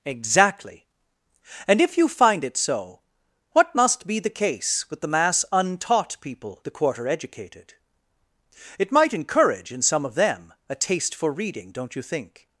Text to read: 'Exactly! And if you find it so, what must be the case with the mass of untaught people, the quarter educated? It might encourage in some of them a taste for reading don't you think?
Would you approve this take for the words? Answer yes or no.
no